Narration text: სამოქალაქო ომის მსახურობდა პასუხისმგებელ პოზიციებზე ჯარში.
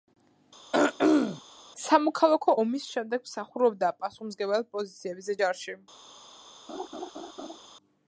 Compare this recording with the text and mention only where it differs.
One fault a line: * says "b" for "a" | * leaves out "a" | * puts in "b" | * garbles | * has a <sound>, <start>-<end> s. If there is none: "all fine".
* has a throat clearing, 0.7-1.4 s
* puts in "შემდეგ"
* has a laugh, 6.7-7.6 s